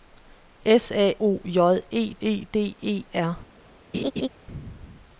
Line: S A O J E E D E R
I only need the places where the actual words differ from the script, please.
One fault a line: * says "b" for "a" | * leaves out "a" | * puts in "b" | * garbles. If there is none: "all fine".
all fine